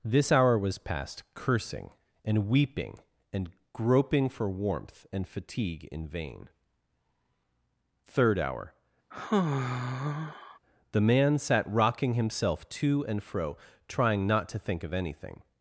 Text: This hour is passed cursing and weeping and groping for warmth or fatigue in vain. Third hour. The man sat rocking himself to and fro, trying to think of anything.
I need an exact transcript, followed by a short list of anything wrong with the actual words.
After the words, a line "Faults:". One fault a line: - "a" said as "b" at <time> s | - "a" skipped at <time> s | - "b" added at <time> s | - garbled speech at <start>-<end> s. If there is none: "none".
This hour was passed cursing and weeping and groping for warmth and fatigue in vain. Third hour. The man sat rocking himself to and fro, trying not to think of anything.
Faults:
- "is" said as "was" at 0.6 s
- "or" said as "and" at 5.1 s
- "not" added at 14.3 s